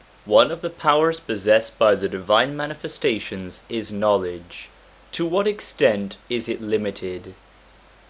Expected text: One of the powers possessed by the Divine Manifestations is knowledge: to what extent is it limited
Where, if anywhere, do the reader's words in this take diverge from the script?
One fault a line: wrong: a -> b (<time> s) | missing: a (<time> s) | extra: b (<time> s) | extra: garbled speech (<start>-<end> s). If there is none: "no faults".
no faults